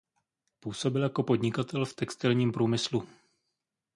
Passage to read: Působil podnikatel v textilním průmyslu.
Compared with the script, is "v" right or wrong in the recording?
right